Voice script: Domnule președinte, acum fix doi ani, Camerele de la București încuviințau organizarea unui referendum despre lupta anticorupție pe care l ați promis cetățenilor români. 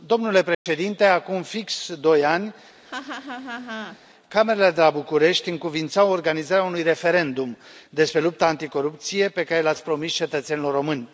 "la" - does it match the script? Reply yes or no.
yes